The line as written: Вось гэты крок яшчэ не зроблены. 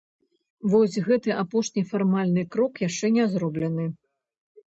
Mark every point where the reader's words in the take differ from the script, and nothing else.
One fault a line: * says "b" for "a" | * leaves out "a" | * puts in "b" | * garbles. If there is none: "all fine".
* puts in "апошні фармальны"